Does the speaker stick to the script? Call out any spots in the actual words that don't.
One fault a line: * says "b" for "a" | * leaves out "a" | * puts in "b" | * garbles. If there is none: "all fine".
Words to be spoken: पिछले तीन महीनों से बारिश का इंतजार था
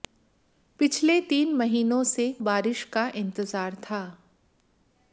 all fine